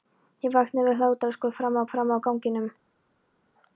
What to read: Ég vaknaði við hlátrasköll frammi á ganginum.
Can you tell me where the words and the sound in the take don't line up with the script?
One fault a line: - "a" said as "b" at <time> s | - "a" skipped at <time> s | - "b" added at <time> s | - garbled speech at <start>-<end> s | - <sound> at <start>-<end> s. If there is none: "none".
- "frammi" added at 1.9 s